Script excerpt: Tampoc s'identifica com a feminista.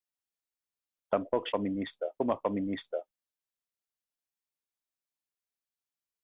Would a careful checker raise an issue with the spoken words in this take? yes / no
yes